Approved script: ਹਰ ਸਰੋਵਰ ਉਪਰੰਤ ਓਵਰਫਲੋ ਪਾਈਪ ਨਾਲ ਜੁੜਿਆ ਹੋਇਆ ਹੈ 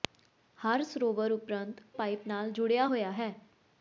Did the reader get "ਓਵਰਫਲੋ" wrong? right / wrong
wrong